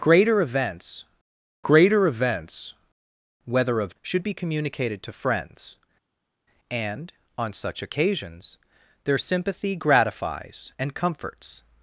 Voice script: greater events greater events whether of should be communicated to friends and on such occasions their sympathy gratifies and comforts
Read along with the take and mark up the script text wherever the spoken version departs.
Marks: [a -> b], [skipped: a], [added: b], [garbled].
greater events greater events whether of should be communicated to friends and on such occasions their sympathy gratifies and comforts